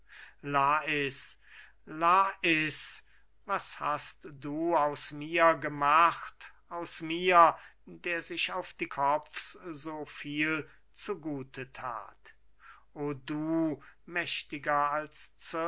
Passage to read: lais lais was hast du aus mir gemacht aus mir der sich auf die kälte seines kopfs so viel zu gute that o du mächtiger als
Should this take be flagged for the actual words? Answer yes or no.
yes